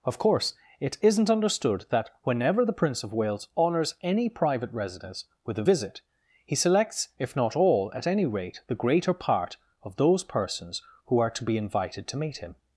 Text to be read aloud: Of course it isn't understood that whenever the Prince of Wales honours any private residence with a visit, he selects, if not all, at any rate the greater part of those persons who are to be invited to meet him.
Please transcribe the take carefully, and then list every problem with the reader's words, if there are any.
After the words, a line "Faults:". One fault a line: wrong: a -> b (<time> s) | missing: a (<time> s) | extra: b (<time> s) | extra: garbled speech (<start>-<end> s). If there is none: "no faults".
Of course it isn't understood that whenever the Prince of Wales honours any private residence with a visit, he selects, if not all, at any rate the greater part of those persons who are to be invited to meet him.
Faults:
no faults